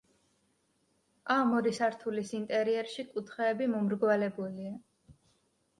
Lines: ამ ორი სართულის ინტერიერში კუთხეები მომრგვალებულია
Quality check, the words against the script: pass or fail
pass